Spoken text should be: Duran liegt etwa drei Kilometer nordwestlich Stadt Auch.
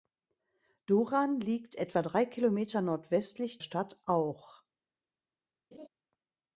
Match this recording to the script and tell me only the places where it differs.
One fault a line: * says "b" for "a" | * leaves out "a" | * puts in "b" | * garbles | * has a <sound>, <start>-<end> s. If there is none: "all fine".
* has a laugh, 5.7-5.9 s